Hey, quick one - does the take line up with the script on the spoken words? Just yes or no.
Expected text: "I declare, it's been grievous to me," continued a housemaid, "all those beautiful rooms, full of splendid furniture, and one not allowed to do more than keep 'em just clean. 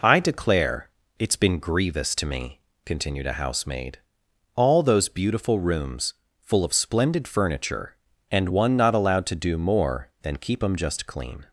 yes